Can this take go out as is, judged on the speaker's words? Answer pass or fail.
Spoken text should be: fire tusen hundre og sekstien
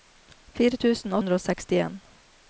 pass